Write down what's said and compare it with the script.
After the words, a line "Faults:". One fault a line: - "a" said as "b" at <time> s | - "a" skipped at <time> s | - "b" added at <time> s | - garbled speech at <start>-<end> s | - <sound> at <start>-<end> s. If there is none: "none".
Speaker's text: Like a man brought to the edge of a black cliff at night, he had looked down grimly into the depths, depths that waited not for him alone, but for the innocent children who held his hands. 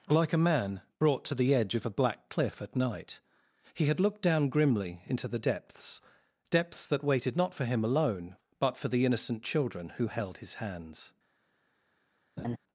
Like a man brought to the edge of a black cliff at night, he had looked down grimly into the depths, depths that waited not for him alone, but for the innocent children who held his hands.
Faults:
- laugh at 12.4-12.6 s